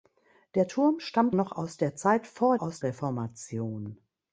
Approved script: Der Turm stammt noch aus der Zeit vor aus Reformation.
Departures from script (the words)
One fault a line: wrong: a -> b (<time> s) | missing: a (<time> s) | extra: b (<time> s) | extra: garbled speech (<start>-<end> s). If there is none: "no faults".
no faults